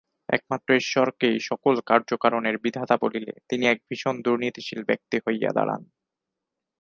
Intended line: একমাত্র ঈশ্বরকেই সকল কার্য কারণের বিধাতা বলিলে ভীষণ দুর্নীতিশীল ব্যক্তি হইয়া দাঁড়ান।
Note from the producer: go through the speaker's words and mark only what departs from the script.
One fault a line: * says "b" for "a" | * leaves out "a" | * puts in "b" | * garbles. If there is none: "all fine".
* puts in "তিনি এক"